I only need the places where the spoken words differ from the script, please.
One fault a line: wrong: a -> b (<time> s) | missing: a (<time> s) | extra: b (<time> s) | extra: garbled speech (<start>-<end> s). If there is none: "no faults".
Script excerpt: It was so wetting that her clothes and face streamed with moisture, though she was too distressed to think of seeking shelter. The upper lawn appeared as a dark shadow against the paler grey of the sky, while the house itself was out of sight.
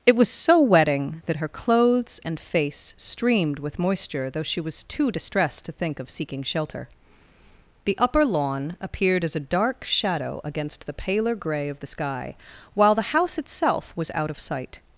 no faults